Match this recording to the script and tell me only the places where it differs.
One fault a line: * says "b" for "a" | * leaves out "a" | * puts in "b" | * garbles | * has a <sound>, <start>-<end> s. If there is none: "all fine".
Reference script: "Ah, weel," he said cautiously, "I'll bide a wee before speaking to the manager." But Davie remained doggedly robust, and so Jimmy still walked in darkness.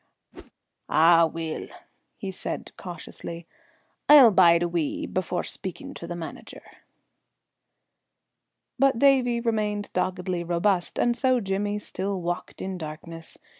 * has a whoosh, 0.3-0.5 s